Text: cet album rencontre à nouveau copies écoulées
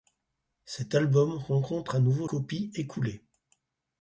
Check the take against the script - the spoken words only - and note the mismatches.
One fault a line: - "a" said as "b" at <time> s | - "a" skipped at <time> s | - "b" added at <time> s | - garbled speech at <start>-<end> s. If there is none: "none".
none